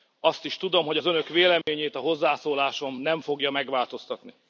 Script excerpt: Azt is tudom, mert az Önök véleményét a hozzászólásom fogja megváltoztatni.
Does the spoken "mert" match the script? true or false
false